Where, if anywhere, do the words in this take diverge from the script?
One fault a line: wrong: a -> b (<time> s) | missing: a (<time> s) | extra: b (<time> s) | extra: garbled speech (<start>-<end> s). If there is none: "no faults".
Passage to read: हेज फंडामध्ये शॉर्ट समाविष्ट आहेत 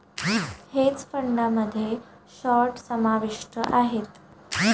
no faults